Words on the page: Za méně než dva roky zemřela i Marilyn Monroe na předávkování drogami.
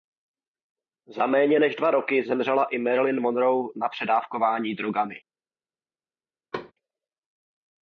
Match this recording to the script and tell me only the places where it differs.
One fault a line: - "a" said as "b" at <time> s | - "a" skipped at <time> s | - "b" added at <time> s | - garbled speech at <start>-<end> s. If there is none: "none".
none